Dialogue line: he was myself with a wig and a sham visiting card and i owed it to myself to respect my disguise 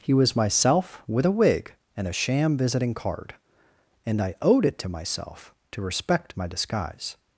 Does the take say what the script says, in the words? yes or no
yes